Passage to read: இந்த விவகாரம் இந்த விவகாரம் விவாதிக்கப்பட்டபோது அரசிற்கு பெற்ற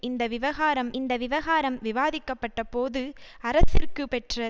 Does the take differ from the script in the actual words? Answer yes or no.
no